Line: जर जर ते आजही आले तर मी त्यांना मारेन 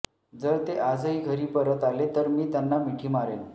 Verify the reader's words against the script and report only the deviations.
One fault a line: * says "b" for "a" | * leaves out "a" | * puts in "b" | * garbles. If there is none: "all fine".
* leaves out "जर"
* puts in "घरी परत"
* puts in "मिठी"